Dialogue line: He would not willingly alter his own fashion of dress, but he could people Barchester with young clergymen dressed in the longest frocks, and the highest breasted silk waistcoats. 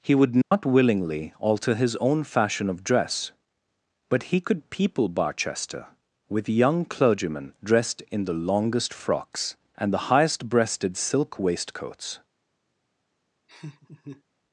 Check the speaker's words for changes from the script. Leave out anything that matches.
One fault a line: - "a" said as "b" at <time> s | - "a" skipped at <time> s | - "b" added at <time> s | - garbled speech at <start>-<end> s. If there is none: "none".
none